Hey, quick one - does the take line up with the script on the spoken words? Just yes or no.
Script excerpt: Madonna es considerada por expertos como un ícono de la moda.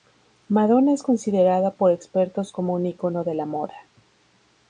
yes